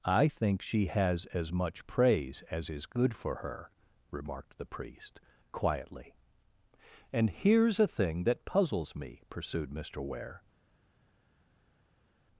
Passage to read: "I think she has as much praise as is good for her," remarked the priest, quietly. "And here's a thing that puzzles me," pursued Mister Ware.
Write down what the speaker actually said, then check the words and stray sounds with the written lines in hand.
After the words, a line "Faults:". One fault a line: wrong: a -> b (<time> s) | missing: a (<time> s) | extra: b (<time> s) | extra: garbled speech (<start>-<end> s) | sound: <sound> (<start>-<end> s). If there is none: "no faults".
"I think she has as much praise as is good for her," remarked the priest, quietly. "And here's a thing that puzzles me," pursued Mister Ware.
Faults:
no faults